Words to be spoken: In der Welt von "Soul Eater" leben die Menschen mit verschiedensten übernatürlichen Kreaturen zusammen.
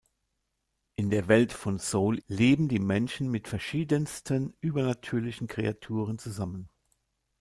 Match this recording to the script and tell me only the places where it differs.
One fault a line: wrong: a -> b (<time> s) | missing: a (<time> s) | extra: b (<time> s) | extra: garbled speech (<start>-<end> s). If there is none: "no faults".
missing: Eater (2.2 s)